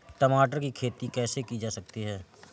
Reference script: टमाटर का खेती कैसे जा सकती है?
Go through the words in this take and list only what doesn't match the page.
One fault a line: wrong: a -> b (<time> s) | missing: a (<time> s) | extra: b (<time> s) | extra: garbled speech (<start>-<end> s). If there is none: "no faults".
wrong: का -> की (0.6 s)
extra: की (1.4 s)